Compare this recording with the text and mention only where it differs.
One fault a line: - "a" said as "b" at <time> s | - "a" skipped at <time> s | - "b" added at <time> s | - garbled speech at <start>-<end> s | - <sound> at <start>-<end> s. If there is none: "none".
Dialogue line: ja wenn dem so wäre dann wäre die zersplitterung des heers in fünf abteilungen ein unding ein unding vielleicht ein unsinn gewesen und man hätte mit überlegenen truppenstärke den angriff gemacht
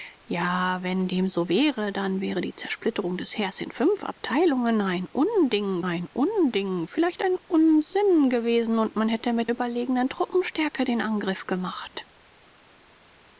none